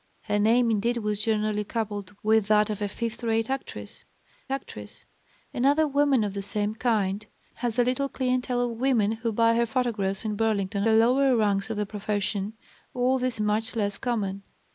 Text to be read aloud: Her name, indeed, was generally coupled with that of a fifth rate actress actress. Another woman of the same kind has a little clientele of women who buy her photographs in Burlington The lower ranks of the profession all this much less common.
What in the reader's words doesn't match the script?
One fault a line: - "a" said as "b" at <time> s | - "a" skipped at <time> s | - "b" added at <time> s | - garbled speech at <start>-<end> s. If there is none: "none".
none